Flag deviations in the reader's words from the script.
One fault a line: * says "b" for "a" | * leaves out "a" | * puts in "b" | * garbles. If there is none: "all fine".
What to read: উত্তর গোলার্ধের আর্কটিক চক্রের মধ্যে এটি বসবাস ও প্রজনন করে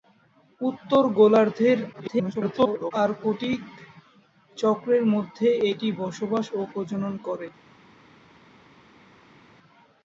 * garbles